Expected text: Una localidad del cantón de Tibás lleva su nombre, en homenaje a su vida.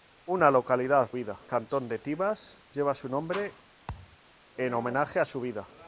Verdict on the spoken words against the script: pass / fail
fail